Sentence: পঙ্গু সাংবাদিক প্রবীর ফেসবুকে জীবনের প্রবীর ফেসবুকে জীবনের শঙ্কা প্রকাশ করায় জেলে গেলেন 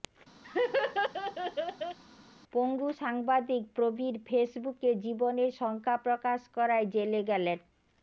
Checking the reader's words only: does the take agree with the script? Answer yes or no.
no